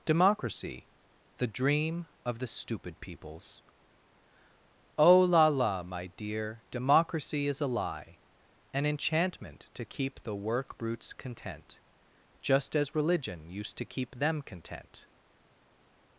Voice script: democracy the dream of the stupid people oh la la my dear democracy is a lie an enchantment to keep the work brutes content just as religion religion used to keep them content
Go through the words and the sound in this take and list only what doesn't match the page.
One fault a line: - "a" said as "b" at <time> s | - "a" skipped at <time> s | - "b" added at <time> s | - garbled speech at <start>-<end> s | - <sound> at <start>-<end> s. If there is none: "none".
- "people" said as "peoples" at 3.0 s
- "religion" skipped at 13.5 s